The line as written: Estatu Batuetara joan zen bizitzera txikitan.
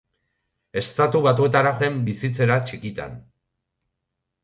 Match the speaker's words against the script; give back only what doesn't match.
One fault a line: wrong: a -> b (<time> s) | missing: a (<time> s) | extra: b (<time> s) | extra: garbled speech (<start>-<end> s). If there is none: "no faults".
missing: joan (1.7 s)